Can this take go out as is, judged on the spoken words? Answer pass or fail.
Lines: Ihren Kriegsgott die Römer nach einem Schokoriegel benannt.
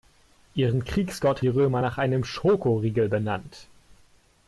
pass